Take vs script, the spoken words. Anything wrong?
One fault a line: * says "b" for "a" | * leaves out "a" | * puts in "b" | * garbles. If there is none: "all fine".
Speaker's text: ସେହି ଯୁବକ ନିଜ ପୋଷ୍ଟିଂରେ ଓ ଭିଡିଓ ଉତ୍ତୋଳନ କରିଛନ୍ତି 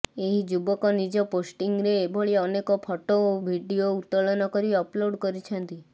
* says "ଏହି" for "ସେହି"
* puts in "ଏଭଳି ଅନେକ ଫଟୋ"
* puts in "କରି ଅପଲୋଡ୍"